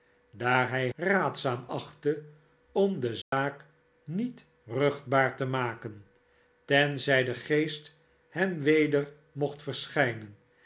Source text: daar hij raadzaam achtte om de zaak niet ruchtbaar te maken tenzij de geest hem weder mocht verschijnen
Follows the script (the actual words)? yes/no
yes